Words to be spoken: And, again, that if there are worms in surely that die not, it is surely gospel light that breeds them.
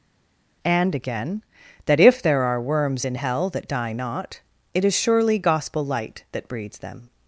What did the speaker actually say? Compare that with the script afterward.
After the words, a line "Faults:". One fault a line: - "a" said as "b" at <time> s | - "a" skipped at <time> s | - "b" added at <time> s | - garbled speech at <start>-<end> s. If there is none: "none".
And, again, that if there are worms in hell that die not, it is surely gospel light that breeds them.
Faults:
- "surely" said as "hell" at 3.1 s